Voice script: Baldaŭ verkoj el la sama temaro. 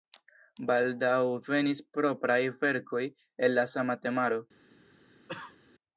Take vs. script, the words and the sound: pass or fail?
fail